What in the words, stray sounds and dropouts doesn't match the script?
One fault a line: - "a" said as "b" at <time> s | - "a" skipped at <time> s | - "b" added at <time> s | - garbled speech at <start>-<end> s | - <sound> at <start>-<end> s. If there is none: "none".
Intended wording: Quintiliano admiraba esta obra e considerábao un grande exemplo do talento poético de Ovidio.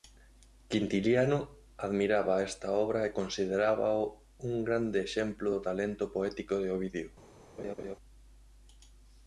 - laugh at 7.6-8.0 s